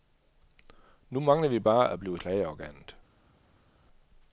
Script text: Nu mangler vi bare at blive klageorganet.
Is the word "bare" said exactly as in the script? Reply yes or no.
yes